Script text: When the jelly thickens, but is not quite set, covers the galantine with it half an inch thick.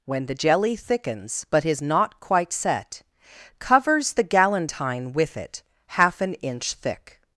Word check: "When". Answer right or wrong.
right